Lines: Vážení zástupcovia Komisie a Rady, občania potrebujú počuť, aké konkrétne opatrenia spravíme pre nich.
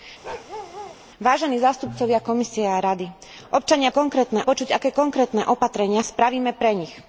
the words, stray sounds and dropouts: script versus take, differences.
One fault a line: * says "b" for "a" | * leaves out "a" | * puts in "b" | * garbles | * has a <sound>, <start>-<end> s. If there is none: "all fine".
* has a bark, 0.2-1.0 s
* says "konkrétne" for "potrebujú"